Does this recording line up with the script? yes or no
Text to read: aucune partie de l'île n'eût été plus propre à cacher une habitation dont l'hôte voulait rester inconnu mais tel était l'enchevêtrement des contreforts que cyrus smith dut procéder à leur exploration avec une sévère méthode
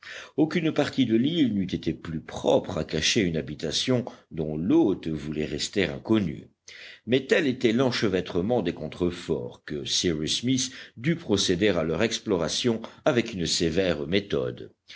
yes